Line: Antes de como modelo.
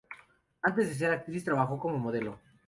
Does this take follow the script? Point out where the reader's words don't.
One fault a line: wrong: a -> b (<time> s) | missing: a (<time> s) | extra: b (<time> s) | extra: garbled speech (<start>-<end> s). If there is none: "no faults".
extra: ser actriz trabajó (0.9 s)